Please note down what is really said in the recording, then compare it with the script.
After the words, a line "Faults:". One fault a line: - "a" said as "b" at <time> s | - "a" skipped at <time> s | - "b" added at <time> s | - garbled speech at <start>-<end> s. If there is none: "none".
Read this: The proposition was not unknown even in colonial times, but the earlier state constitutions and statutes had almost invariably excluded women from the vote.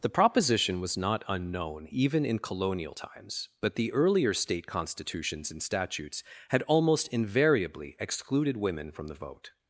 The proposition was not unknown even in colonial times, but the earlier state constitutions and statutes had almost invariably excluded women from the vote.
Faults:
none